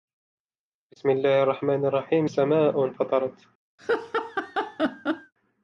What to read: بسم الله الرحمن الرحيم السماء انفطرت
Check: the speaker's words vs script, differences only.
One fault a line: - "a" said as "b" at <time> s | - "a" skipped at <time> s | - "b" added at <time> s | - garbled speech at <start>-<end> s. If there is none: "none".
none